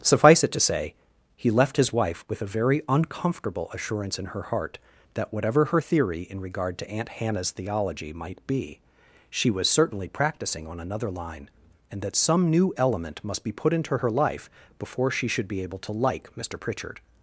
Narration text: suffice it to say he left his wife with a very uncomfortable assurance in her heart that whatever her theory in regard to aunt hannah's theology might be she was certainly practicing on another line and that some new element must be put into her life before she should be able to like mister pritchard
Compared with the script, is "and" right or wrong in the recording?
right